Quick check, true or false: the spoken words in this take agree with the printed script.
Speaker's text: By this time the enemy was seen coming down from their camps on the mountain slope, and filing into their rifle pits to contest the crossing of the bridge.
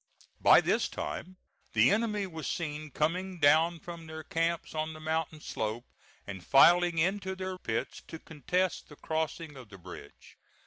false